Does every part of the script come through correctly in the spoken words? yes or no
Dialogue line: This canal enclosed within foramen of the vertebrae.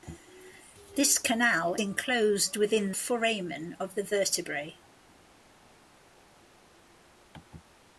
yes